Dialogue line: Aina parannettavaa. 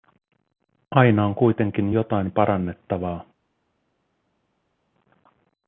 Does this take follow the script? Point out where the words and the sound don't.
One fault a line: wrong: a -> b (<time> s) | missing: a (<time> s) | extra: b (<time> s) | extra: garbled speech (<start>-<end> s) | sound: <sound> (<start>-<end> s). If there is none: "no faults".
extra: on kuitenkin jotain (1.2 s)